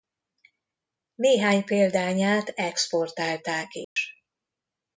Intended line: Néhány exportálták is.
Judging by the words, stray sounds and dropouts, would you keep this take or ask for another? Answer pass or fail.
fail